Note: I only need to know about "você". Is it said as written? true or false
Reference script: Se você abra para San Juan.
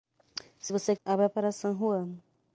true